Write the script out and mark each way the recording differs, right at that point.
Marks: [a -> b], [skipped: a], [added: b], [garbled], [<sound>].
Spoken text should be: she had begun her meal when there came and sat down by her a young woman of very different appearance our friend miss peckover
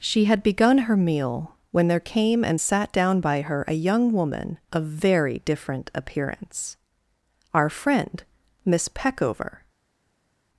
she had begun her meal when there came and sat down by her a young woman of very different appearance our friend miss peckover